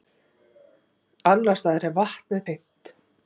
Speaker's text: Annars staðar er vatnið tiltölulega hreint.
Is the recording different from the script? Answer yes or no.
yes